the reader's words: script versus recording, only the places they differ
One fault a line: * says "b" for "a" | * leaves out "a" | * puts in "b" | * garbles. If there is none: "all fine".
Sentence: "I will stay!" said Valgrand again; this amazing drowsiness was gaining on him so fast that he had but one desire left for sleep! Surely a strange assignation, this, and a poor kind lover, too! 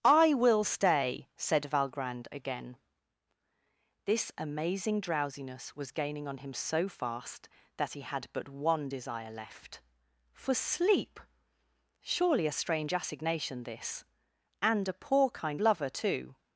all fine